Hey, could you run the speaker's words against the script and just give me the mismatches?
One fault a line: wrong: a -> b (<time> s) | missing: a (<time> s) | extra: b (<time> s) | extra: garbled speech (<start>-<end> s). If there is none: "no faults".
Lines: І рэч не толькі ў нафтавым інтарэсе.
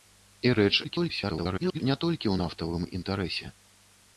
extra: garbled speech (0.8-1.8 s)